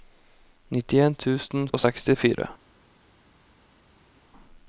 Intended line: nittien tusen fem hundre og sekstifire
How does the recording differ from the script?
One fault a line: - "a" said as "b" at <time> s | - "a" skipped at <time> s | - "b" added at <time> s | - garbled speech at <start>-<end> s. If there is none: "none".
- "fem hundre" skipped at 1.7 s